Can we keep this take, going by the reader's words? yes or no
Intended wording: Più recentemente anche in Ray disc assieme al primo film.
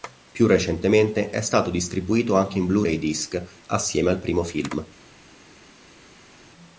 no